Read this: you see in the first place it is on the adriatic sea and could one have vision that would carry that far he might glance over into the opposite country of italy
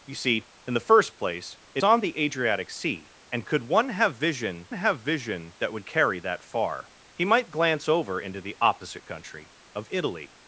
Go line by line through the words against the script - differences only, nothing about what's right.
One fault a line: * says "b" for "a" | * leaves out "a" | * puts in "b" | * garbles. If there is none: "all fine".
* leaves out "is"
* puts in "have vision"